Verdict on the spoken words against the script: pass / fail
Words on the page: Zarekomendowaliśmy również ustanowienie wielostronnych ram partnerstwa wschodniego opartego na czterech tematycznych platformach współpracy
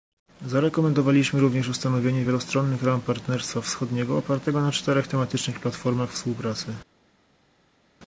pass